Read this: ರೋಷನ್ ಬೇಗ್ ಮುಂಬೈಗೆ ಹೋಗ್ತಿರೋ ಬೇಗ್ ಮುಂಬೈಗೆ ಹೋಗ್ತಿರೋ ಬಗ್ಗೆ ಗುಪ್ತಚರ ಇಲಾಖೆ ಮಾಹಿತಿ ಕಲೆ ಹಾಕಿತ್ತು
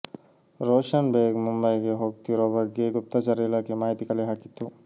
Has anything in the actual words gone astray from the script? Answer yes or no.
yes